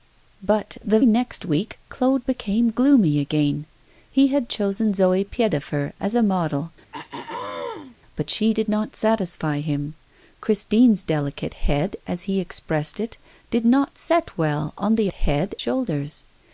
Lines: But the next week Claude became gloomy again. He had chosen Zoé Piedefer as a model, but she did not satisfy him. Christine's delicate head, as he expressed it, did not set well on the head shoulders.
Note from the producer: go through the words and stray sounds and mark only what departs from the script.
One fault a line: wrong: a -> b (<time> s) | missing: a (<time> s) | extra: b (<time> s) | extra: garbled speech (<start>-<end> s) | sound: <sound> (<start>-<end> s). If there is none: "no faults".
sound: throat clearing (6.9-7.9 s)